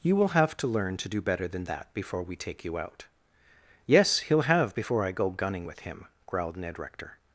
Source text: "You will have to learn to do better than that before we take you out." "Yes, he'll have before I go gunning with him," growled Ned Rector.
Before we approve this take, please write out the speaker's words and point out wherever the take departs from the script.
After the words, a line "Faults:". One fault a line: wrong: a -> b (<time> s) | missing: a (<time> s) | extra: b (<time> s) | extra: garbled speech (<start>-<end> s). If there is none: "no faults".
"You will have to learn to do better than that before we take you out." "Yes, he'll have before I go gunning with him," growled Ned Rector.
Faults:
no faults